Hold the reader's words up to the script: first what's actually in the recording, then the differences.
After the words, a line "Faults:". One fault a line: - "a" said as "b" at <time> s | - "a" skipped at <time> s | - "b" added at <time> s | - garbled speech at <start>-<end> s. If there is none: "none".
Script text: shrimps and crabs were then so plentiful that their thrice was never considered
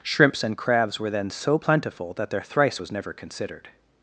shrimps and crabs were then so plentiful that their thrice was never considered
Faults:
none